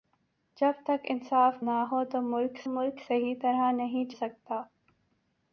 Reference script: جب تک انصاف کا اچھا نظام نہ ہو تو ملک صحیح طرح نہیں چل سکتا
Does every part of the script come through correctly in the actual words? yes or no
no